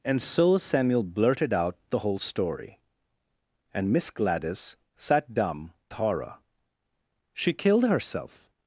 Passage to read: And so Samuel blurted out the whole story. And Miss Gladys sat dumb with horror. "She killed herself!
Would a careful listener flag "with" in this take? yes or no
yes